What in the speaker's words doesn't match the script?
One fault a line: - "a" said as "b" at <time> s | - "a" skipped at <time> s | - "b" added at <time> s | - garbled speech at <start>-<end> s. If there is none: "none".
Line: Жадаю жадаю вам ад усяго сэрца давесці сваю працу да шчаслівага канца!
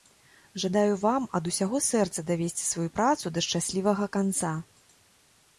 - "жадаю" skipped at 0.9 s